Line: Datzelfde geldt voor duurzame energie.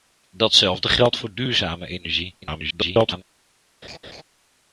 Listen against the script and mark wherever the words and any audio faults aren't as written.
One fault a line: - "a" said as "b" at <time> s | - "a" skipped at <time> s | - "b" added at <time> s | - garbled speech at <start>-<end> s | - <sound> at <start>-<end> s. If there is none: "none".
- garbled speech at 2.4-3.2 s
- laugh at 3.8-4.2 s